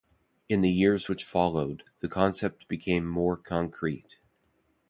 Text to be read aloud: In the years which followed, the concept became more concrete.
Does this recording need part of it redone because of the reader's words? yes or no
no